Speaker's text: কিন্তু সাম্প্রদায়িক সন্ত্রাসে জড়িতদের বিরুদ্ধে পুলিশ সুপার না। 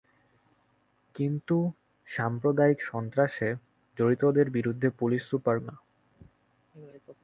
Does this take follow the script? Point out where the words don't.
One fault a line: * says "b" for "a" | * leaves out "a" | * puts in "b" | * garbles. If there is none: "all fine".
all fine